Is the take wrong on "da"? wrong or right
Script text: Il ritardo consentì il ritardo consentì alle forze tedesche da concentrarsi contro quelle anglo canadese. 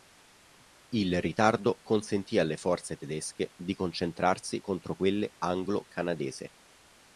wrong